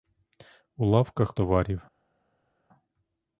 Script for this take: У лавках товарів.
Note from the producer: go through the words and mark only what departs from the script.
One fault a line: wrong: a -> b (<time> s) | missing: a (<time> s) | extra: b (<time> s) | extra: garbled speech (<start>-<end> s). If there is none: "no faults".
no faults